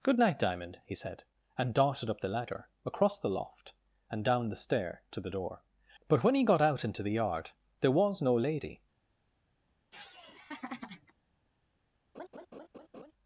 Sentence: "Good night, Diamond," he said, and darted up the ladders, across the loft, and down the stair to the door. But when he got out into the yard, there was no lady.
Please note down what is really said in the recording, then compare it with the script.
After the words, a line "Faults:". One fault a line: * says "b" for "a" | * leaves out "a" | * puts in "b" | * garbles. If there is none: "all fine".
"Good night, Diamond," he said, and darted up the ladder, across the loft, and down the stair to the door. But when he got out into the yard, there was no lady.
Faults:
* says "ladder" for "ladders"